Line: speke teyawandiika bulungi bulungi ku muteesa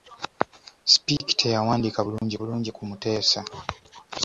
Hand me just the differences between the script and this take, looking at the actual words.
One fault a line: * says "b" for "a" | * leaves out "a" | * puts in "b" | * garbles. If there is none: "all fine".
all fine